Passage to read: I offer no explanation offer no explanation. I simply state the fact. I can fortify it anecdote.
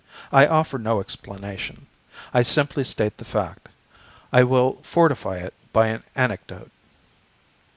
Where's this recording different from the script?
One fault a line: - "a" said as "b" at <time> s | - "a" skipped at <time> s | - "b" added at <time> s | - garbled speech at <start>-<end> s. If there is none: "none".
- "offer no explanation" skipped at 1.9 s
- "can" said as "will" at 4.4 s
- "by an" added at 5.7 s